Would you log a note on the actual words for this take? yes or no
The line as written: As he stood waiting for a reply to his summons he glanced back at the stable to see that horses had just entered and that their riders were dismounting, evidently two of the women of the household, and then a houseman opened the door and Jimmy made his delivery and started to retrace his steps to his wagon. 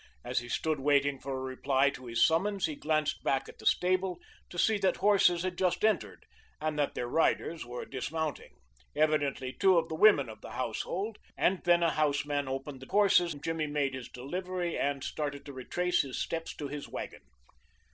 yes